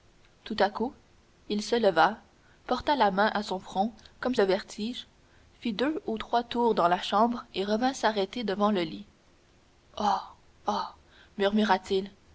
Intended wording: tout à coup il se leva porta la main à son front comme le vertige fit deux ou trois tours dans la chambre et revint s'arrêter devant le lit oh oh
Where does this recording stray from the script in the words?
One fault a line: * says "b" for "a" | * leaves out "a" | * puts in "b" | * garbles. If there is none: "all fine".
all fine